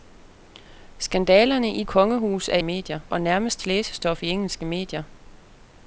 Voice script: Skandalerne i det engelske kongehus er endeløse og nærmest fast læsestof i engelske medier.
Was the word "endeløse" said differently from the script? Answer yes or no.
yes